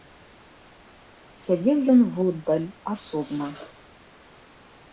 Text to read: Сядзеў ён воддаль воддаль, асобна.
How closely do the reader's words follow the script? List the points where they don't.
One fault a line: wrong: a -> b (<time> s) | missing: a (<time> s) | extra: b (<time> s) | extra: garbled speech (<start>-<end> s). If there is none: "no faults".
missing: воддаль (2.7 s)